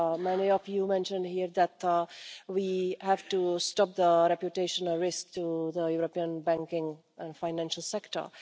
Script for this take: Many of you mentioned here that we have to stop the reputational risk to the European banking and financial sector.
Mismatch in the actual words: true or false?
false